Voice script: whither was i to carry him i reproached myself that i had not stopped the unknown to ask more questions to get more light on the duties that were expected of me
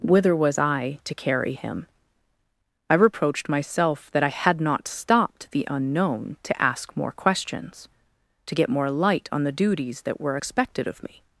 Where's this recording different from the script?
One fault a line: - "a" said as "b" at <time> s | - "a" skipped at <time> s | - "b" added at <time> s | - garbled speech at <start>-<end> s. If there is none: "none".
none